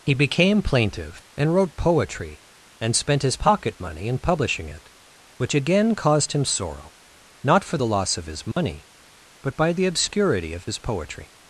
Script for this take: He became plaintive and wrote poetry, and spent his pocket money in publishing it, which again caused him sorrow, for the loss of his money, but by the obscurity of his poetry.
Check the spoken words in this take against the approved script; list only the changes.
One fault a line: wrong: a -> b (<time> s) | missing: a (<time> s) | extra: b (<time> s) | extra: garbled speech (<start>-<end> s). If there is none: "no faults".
extra: not (7.4 s)